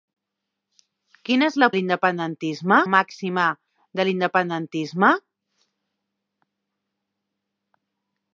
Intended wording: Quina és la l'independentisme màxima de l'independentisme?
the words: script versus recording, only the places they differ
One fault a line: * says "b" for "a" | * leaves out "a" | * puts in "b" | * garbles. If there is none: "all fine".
all fine